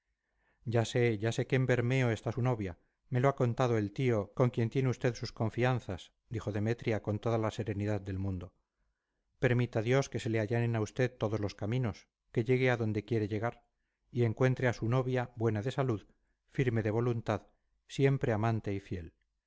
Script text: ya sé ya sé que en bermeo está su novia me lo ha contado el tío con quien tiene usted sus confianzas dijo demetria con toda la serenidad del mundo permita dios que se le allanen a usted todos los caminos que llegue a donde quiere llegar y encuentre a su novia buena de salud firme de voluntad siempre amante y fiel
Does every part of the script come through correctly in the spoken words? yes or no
yes